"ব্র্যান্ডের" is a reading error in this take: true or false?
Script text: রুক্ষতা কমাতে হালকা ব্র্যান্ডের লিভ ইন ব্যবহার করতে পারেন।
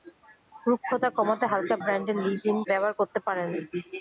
false